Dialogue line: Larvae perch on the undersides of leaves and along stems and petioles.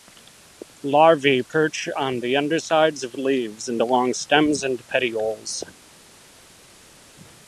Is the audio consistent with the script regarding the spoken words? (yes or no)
yes